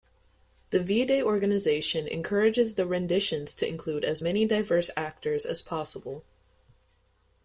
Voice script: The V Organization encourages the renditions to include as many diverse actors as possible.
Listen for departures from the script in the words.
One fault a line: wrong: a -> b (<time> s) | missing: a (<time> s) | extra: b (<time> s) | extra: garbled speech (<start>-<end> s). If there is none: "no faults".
extra: Day (1.1 s)